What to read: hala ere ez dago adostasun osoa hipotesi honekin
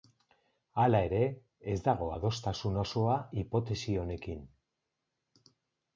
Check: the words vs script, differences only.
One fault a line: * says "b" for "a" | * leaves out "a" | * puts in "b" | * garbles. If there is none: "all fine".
all fine